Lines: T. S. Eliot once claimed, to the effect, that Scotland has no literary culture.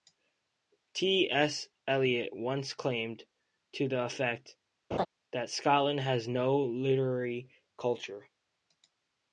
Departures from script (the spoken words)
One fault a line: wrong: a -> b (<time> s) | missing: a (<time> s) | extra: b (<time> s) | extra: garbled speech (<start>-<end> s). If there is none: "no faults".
no faults